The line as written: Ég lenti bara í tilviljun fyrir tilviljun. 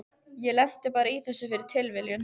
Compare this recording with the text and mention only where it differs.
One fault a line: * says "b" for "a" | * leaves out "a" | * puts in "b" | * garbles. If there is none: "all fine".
* says "þessu" for "tilviljun"